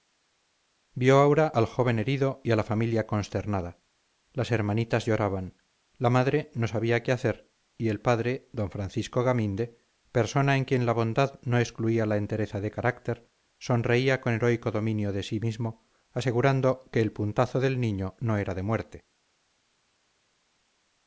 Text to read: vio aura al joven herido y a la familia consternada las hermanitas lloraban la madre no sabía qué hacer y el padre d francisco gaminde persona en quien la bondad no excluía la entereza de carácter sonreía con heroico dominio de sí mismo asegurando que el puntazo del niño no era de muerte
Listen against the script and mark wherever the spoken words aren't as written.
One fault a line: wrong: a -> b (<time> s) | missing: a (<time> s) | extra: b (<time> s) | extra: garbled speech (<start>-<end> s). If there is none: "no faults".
no faults